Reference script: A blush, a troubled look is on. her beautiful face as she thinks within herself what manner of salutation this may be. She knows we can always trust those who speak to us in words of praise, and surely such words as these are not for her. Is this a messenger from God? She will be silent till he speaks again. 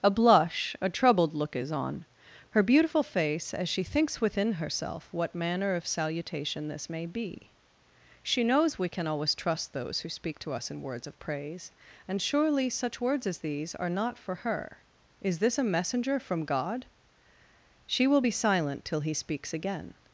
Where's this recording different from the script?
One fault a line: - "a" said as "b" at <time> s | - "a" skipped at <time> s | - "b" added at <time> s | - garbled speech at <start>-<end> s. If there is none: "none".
none